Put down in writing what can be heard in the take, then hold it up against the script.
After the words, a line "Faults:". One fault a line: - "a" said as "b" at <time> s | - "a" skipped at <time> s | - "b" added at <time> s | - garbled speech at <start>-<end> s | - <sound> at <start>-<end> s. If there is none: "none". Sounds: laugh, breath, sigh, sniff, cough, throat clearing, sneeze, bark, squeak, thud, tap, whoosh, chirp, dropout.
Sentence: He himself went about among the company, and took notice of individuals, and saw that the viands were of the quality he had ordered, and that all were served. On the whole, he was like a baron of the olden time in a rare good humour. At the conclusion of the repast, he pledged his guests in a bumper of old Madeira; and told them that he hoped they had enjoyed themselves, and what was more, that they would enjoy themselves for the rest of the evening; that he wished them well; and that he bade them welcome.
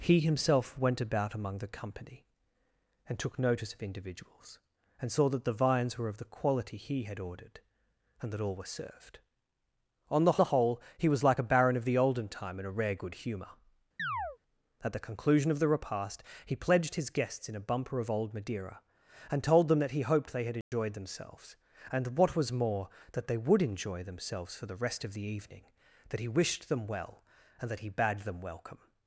He himself went about among the company, and took notice of individuals, and saw that the viands were of the quality he had ordered, and that all were served. On the the whole, he was like a baron of the olden time in a rare good humour. At the conclusion of the repast, he pledged his guests in a bumper of old Madeira; and told them that he hoped they had enjoyed themselves, and what was more, that they would enjoy themselves for the rest of the evening; that he wished them well; and that he bade them welcome.
Faults:
- "the" added at 10.4 s
- chirp at 14.0-14.4 s
- dropout at 20.6-20.7 s